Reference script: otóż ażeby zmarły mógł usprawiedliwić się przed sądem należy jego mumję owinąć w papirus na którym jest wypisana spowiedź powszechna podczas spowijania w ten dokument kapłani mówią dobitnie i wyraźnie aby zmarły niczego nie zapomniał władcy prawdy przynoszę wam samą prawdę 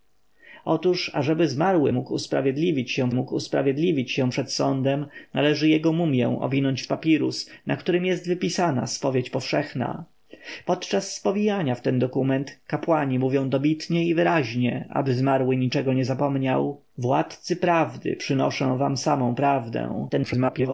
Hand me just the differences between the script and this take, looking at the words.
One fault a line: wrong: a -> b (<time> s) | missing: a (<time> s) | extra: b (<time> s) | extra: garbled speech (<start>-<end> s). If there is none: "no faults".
extra: mógł usprawiedliwić się (3.1 s)
extra: garbled speech (20.1-20.7 s)